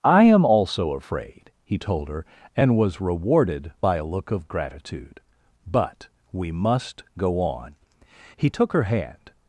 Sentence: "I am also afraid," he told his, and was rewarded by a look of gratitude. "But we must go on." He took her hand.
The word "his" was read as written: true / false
false